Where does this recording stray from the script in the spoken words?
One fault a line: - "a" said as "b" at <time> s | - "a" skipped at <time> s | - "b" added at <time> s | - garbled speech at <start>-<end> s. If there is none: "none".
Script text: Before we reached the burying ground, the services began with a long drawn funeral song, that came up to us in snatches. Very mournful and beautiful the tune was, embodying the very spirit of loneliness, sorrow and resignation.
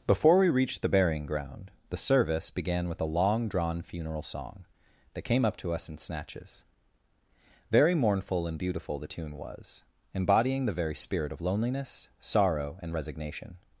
- "services" said as "service" at 2.0 s